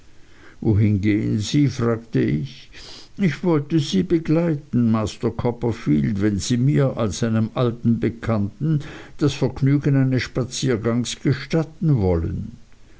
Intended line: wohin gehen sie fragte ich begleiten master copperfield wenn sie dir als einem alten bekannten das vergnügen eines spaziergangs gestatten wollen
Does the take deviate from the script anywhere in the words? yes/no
yes